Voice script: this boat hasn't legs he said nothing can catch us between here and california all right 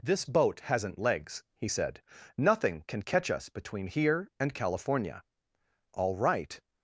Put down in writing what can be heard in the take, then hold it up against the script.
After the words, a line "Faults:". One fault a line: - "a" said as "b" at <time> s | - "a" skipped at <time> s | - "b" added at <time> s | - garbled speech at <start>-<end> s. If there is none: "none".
this boat hasn't legs he said nothing can catch us between here and california all right
Faults:
none